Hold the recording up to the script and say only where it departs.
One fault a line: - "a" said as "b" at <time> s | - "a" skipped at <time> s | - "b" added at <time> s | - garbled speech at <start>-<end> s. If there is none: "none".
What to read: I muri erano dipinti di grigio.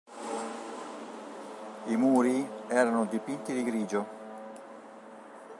none